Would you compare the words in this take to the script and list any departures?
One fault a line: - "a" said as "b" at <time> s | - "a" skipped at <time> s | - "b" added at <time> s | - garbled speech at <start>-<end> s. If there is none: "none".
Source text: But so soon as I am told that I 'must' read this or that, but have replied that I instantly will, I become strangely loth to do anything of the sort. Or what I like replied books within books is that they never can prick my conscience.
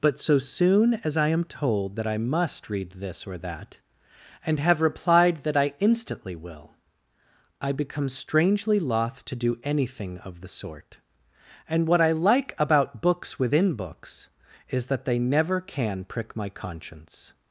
- "but" said as "and" at 4.4 s
- "Or" said as "And" at 11.7 s
- "replied" said as "about" at 12.6 s